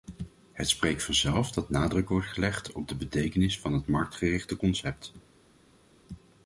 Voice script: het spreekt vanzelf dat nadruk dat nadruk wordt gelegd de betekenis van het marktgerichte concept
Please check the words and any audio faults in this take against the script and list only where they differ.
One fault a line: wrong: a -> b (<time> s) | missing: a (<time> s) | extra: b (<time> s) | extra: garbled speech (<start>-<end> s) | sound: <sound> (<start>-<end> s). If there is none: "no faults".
missing: dat nadruk (2.1 s)
extra: op (2.7 s)